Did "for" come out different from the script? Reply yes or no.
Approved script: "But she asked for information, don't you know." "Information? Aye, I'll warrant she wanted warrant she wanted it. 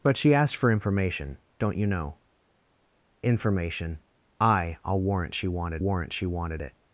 no